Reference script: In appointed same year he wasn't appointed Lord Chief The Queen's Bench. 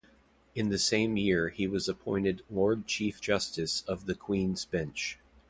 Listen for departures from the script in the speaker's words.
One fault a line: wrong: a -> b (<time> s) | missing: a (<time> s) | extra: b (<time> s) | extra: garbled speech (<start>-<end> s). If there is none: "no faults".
wrong: appointed -> the (0.7 s)
wrong: wasn't -> was (1.7 s)
extra: Justice of (3.2 s)